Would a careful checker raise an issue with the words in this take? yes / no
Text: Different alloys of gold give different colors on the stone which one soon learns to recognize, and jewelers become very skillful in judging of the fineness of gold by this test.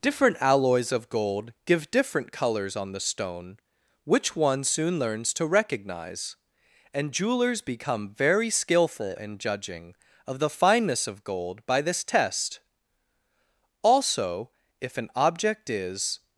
yes